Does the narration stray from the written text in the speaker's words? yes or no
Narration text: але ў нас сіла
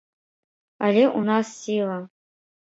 no